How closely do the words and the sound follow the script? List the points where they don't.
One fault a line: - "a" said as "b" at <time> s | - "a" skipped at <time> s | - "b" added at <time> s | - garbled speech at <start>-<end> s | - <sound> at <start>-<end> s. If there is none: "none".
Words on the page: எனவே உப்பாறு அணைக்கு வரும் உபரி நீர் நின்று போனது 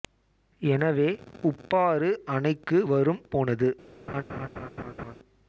- "உபரி நீர் நின்று" skipped at 3.2 s
- laugh at 4.1-5.2 s